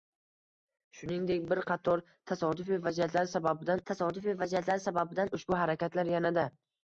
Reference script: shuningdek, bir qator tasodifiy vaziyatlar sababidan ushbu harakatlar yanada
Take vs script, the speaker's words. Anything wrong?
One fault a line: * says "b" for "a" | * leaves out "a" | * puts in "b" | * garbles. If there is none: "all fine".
* puts in "tasodifiy vaziyatlar sababidan"